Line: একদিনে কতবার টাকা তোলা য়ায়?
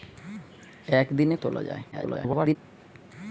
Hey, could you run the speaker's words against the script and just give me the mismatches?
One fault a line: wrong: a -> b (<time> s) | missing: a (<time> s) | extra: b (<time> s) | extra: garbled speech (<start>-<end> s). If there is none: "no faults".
missing: কতবার টাকা (1.4 s)
extra: garbled speech (1.9-2.6 s)